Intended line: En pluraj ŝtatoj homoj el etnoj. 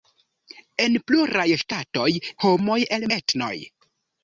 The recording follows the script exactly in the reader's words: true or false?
true